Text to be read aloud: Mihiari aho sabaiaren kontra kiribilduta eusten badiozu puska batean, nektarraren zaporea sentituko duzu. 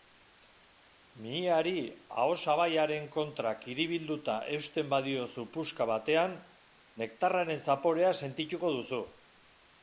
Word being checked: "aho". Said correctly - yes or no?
yes